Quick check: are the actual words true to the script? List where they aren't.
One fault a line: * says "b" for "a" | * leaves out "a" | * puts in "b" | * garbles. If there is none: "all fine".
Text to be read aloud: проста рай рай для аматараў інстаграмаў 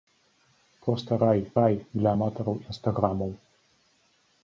all fine